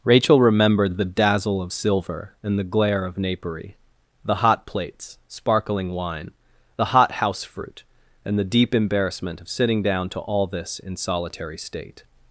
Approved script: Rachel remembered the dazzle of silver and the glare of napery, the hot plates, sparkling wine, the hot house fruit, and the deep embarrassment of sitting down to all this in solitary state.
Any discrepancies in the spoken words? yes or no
no